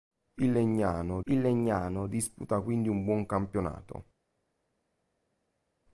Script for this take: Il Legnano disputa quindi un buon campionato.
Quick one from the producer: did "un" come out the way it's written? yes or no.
yes